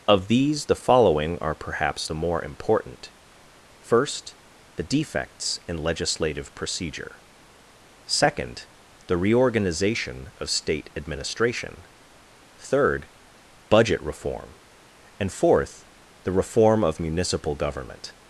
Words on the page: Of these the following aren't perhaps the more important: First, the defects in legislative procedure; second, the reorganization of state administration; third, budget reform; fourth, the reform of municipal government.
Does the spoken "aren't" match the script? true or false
false